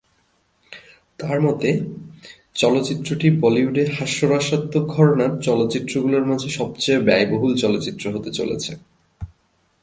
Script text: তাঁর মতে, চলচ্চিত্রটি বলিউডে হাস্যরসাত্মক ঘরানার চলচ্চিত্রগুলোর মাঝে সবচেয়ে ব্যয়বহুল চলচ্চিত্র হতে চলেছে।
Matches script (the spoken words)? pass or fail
pass